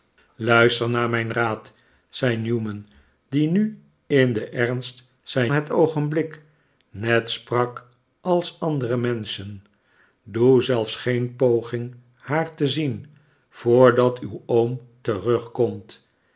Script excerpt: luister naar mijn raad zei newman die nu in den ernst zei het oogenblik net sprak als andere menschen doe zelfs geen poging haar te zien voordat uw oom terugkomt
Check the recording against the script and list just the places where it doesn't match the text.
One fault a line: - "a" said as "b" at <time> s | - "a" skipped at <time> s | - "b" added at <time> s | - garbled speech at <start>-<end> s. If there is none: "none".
none